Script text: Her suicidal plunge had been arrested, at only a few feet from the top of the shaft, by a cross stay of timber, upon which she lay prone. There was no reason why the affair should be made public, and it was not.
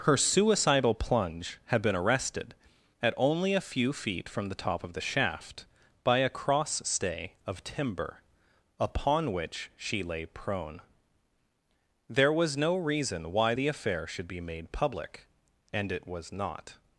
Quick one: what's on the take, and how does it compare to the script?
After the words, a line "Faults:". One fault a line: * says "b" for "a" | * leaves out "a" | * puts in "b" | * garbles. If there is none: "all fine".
Her suicidal plunge had been arrested, at only a few feet from the top of the shaft, by a cross stay of timber, upon which she lay prone. There was no reason why the affair should be made public, and it was not.
Faults:
all fine